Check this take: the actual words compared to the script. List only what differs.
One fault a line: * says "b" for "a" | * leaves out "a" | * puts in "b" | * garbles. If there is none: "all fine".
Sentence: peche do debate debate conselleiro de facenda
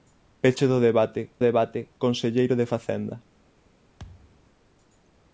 all fine